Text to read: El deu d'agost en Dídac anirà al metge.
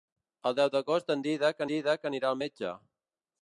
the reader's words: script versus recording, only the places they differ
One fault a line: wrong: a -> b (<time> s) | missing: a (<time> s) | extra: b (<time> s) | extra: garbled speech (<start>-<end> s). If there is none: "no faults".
extra: Dídac (1.7 s)